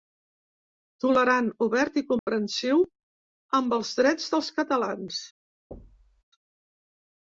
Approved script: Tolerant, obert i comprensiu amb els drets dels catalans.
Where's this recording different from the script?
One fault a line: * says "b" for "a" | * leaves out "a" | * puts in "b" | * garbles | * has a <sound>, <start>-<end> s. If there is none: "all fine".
* has a dropout, 2.2-2.3 s
* has a thud, 5.7-6.2 s